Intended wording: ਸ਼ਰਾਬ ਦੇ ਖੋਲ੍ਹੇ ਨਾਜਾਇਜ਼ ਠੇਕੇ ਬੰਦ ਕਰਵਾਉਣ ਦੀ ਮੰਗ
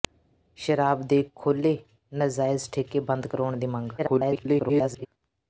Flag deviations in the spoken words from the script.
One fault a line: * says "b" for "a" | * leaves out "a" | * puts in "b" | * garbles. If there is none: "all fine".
* garbles